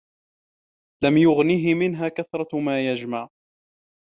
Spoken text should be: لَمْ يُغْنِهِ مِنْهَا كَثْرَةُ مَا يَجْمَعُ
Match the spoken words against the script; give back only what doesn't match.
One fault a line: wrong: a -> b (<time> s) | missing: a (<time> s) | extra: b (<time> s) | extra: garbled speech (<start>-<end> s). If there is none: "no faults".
no faults